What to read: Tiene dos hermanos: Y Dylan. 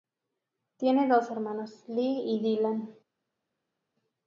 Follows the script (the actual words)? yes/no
no